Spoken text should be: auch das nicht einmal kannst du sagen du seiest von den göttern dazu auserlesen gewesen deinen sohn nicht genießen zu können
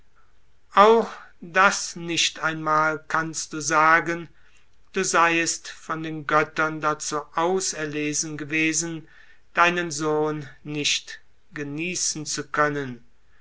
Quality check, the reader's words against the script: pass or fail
pass